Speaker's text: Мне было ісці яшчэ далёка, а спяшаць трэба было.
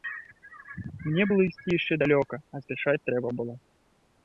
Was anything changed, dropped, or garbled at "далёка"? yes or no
no